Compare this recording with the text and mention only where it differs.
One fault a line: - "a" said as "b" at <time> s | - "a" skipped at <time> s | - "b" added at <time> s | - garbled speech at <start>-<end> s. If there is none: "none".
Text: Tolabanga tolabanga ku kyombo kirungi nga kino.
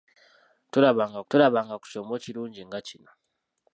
none